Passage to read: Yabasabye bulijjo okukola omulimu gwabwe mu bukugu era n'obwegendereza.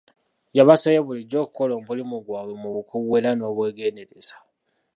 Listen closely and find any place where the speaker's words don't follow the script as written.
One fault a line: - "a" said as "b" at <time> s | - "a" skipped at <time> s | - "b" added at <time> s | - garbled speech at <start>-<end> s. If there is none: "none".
none